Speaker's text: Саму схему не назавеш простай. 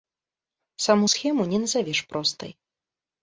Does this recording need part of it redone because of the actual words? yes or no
no